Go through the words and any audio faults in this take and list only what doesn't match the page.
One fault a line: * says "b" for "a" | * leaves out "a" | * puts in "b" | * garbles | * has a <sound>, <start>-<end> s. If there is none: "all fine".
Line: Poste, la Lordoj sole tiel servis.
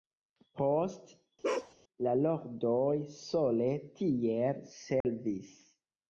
* has a bark, 1.4-1.7 s
* has a dropout, 5.0-5.0 s